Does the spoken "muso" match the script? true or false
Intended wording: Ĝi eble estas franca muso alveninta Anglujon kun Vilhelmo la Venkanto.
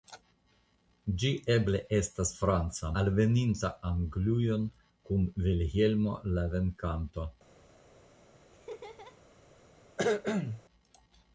false